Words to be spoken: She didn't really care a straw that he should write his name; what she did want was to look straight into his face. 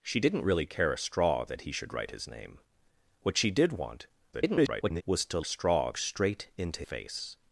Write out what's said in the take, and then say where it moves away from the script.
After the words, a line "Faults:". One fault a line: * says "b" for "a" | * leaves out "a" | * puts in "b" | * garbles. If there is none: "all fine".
She didn't really care a straw that he should write his name; what she did want [garbled] was to straw straight into face.
Faults:
* garbles
* says "straw" for "look"
* leaves out "his"